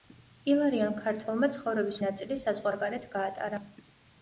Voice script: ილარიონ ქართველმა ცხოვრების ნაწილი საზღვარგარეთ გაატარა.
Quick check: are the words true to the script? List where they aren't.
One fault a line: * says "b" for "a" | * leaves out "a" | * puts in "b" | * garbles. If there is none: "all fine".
all fine